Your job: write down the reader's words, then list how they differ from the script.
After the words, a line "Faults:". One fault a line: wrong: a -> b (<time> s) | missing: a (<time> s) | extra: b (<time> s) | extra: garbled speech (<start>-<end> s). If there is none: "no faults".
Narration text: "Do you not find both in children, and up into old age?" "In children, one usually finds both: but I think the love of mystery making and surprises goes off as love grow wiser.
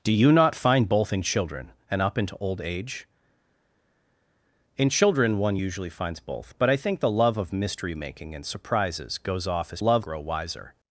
"Do you not find both in children, and up into old age?" "In children, one usually finds both: but I think the love of mystery making and surprises goes off as love grow wiser.
Faults:
no faults